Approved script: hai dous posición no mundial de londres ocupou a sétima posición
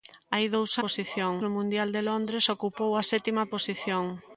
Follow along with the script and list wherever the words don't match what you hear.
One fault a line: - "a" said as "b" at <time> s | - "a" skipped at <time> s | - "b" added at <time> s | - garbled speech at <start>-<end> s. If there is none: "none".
none